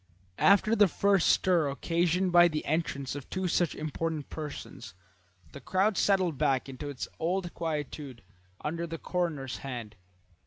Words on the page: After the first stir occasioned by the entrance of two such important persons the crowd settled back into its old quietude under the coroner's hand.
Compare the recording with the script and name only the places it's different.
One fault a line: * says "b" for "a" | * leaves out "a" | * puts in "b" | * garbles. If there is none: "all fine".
all fine